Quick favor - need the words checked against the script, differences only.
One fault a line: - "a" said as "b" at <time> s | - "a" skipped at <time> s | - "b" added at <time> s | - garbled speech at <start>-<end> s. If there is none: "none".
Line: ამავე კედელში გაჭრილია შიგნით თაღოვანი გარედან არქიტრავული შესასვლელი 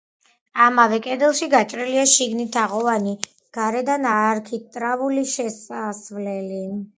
none